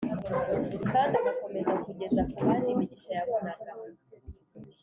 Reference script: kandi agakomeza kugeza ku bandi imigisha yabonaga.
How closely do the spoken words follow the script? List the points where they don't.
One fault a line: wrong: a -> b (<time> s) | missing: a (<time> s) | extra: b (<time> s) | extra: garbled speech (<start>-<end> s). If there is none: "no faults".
no faults